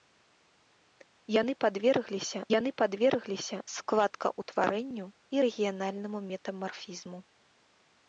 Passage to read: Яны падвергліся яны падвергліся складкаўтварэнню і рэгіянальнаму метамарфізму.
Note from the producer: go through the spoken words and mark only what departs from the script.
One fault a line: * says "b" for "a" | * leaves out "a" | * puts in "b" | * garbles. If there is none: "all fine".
all fine